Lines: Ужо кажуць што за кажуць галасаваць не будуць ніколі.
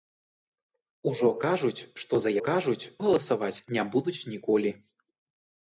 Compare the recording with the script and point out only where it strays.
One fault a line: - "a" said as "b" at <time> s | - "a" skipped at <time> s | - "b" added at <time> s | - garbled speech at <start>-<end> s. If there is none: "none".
none